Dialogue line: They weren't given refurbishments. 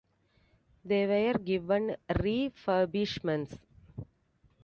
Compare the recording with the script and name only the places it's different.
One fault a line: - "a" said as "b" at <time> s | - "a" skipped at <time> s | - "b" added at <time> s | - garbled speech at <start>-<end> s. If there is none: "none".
- "weren't" said as "were" at 1.1 s